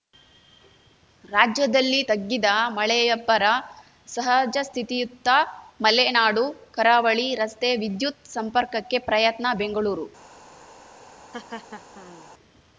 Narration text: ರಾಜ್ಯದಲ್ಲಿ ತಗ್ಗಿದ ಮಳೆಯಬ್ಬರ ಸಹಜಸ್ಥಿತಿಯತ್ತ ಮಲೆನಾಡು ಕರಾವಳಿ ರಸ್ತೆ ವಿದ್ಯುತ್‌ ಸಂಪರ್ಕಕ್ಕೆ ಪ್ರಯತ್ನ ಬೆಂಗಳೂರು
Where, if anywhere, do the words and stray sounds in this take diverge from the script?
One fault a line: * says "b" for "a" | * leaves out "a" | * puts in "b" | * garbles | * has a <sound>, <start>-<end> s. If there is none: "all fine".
* has a laugh, 11.3-12.3 s